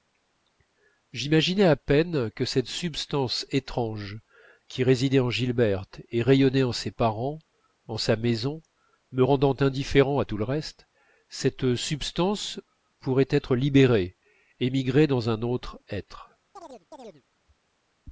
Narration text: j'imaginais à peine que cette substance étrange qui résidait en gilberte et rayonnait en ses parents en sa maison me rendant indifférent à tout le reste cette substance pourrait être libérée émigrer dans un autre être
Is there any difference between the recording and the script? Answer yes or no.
no